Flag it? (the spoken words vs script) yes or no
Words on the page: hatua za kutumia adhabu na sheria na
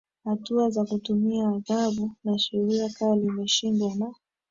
yes